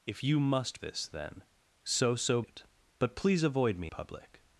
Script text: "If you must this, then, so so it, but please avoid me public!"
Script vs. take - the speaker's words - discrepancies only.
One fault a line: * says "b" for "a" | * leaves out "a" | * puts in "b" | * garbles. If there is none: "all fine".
all fine